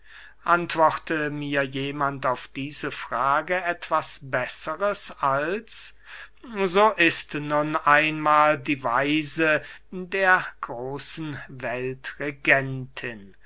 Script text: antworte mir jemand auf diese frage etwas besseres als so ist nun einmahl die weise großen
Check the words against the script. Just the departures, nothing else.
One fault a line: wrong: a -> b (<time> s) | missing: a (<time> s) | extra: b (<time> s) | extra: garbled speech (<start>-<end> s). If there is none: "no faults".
extra: der (9.9 s)